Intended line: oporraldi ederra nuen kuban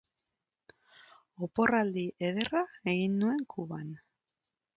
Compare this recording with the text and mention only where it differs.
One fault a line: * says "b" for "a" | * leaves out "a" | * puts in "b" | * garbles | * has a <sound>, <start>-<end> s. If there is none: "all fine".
* puts in "egin"